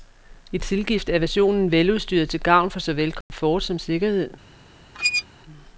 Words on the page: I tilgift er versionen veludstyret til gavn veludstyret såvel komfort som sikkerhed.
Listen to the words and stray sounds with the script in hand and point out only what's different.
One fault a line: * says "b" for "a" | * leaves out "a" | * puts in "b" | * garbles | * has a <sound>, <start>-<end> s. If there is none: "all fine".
* says "for" for "veludstyret"
* has a dropout, 3.2-3.3 s
* has a squeak, 4.9-5.2 s